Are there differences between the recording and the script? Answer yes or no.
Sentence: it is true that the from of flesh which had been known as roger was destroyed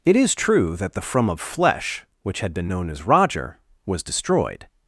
no